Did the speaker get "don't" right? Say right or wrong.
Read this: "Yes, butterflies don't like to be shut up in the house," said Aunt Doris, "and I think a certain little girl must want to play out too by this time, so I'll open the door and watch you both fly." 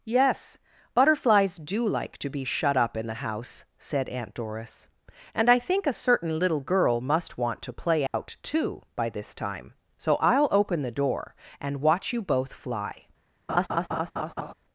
wrong